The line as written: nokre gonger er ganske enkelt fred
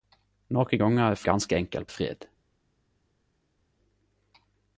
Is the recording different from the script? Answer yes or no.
no